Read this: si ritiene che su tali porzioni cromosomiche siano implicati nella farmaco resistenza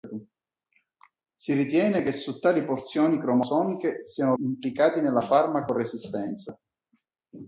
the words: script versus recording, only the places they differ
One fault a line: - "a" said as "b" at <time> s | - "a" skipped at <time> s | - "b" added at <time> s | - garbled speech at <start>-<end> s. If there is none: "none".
none